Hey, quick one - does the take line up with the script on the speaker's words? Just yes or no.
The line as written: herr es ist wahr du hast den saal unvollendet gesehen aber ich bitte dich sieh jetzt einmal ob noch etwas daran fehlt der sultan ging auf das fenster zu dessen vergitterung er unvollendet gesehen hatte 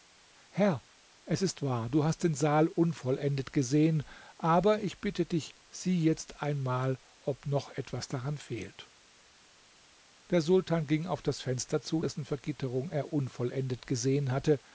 yes